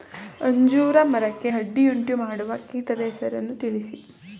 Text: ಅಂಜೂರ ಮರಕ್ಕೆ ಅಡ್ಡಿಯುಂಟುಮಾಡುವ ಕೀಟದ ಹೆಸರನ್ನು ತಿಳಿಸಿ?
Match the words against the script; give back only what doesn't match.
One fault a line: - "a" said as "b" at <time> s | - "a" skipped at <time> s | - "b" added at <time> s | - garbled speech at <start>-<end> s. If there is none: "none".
none